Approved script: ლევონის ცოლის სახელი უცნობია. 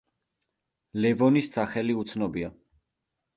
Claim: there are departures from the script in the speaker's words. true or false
true